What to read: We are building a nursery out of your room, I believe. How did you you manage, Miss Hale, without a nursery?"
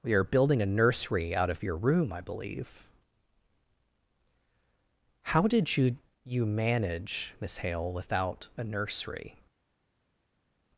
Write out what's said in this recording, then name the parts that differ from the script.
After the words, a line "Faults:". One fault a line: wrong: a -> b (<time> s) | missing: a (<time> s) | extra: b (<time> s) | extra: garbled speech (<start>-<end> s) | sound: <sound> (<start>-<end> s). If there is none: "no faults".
We are building a nursery out of your room, I believe. How did you you manage, Miss Hale, without a nursery?"
Faults:
no faults